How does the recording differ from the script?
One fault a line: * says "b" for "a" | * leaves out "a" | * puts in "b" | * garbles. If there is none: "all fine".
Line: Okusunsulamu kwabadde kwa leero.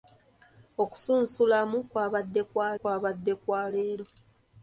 * puts in "kwabadde kwa"